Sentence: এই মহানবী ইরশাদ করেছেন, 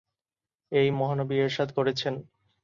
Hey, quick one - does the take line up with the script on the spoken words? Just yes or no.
yes